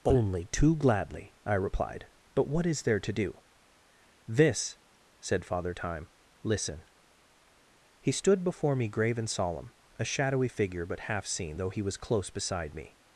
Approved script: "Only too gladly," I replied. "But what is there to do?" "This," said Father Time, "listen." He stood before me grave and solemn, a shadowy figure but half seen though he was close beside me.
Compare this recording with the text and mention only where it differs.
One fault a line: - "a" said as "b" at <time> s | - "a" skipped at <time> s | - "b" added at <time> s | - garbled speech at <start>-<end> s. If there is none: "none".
none